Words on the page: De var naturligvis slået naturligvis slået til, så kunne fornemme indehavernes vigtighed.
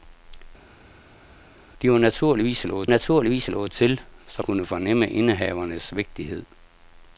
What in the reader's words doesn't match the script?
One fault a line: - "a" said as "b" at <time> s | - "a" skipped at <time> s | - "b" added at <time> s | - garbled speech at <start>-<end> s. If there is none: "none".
none